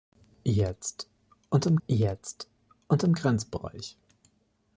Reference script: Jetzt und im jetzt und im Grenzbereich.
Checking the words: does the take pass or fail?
pass